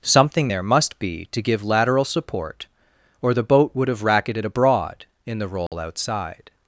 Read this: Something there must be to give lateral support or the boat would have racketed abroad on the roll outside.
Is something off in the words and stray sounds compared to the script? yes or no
yes